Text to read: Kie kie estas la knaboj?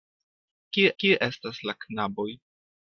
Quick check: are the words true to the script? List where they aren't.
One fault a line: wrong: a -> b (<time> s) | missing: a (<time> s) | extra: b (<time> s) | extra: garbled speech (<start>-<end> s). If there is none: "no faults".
no faults